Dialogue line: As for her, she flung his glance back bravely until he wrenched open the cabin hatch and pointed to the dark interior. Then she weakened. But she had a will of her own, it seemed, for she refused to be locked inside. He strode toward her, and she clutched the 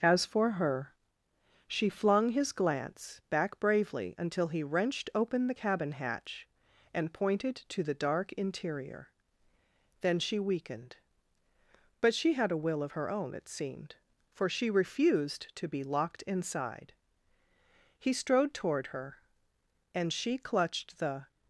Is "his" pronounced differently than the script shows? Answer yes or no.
no